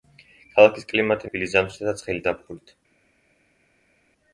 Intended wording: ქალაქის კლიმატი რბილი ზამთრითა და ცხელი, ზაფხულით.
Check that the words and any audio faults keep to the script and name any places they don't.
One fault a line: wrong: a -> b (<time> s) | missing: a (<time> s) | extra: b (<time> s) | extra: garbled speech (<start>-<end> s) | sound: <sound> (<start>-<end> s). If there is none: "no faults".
no faults